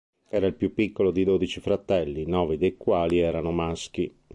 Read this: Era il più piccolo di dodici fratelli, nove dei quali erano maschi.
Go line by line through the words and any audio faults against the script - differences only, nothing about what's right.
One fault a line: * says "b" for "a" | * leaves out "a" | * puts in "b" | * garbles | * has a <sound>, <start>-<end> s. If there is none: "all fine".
all fine